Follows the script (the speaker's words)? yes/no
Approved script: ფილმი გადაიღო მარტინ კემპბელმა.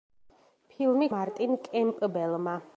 no